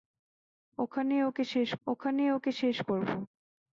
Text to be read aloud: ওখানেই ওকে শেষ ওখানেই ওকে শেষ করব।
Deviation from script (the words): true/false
false